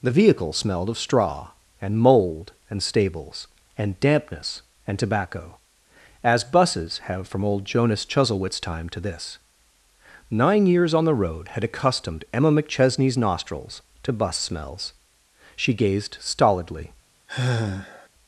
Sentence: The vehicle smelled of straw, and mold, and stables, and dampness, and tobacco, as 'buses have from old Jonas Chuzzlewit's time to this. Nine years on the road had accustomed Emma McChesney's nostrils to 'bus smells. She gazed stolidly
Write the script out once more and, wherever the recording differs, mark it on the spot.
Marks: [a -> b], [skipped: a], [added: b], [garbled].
The vehicle smelled of straw, and mold, and stables, and dampness, and tobacco, as 'buses have from old Jonas Chuzzlewit's time to this. Nine years on the road had accustomed Emma McChesney's nostrils to 'bus smells. She gazed stolidly